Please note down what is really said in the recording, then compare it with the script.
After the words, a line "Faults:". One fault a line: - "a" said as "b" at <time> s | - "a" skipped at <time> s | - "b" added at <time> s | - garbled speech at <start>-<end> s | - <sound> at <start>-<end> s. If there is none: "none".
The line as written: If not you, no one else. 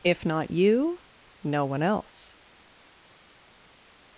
If not you, no one else.
Faults:
none